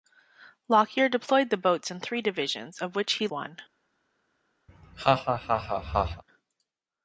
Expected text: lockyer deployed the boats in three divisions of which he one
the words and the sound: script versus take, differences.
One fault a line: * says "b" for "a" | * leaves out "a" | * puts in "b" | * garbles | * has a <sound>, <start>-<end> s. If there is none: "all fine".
* has a laugh, 4.7-6.2 s